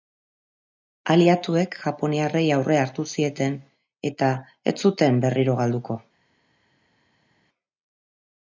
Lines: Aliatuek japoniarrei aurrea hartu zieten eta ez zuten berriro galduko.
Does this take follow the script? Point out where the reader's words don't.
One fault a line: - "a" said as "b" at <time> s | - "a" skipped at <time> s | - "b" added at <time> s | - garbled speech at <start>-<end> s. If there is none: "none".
none